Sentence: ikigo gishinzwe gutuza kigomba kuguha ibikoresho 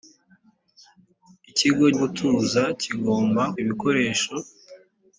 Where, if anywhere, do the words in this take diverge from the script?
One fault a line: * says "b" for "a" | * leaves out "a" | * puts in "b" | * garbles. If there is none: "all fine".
* leaves out "gishinzwe"
* leaves out "kuguha"